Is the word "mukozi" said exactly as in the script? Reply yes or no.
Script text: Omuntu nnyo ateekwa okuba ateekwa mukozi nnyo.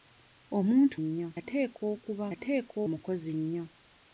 yes